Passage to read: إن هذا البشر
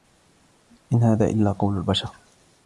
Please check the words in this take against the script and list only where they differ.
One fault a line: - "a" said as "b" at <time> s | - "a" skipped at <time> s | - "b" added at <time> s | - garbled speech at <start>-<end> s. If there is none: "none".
- "إلا قول" added at 1.2 s